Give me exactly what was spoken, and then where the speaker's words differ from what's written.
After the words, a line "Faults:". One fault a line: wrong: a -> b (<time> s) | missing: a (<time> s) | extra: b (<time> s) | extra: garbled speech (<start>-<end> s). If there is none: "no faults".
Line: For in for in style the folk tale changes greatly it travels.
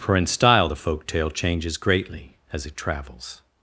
For in style the folk tale changes greatly as it travels.
Faults:
missing: for in (0.2 s)
extra: as (2.5 s)